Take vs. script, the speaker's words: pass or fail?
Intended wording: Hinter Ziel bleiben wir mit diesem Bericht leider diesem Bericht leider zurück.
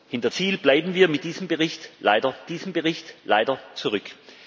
pass